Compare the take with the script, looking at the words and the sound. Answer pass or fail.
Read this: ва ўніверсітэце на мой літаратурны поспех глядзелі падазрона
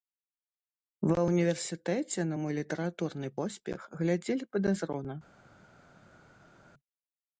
pass